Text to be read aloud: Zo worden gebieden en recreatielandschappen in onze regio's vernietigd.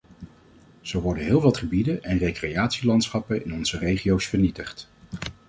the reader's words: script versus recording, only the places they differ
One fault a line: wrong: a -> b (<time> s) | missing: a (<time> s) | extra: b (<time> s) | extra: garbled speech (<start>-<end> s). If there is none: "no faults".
extra: heel wat (1.2 s)